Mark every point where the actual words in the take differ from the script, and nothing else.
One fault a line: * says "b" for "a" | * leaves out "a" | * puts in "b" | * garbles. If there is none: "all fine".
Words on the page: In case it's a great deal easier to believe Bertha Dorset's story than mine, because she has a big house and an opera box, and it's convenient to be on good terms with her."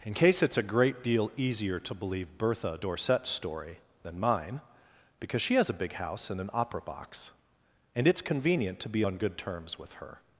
all fine